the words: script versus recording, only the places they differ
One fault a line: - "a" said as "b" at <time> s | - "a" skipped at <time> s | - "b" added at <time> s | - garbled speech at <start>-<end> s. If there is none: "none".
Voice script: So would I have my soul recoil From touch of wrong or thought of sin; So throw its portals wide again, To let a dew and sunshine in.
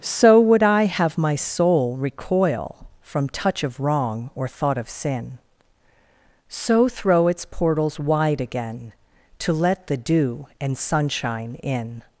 - "a" said as "the" at 9.8 s